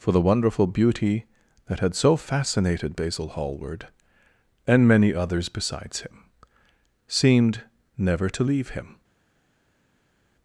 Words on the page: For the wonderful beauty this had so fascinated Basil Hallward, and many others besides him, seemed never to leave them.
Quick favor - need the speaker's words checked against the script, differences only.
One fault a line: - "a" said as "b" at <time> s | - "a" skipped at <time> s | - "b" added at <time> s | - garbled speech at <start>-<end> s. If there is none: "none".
- "this" said as "that" at 1.7 s
- "them" said as "him" at 8.7 s